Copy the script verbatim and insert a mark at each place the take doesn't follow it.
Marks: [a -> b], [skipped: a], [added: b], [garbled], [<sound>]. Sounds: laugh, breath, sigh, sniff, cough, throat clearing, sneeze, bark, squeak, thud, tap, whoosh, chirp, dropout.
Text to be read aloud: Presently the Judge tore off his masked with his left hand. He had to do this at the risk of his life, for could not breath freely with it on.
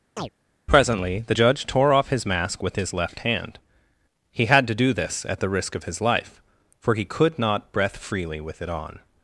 [chirp] Presently the Judge tore off his [masked -> mask] with his left hand. He had to do this at the risk of his life, for [added: he] could not breath freely with it on.